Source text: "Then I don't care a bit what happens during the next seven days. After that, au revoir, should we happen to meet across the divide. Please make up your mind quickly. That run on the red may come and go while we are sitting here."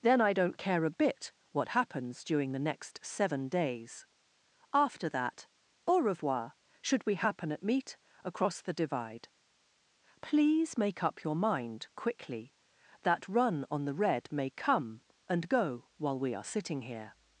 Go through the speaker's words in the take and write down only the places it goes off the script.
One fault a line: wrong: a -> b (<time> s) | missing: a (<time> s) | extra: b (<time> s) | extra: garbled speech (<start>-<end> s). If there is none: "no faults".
wrong: to -> at (7.5 s)